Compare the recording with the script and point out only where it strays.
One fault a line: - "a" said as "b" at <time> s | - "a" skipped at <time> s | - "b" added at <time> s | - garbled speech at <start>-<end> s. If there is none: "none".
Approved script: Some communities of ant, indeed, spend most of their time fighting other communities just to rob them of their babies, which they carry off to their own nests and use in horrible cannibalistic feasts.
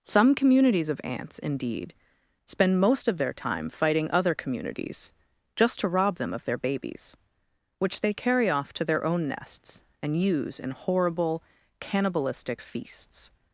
- "ant" said as "ants" at 1.0 s